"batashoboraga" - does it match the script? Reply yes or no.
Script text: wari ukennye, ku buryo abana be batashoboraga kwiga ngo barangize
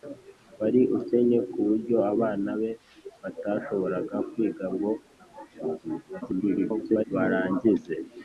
yes